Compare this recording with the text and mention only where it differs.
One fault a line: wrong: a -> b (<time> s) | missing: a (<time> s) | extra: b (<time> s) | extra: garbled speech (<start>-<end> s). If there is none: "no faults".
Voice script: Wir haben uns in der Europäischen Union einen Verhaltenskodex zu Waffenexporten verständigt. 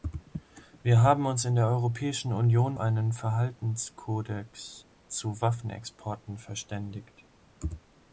no faults